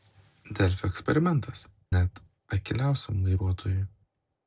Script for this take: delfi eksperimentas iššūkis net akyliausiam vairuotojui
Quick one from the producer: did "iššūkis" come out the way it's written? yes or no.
no